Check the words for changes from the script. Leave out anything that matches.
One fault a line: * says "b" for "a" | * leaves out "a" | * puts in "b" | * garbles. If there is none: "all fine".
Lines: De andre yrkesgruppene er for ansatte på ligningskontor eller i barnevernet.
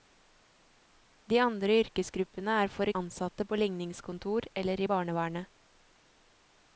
all fine